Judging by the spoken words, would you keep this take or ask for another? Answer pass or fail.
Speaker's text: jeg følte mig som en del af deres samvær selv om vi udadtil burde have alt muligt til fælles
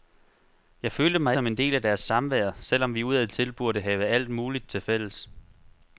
pass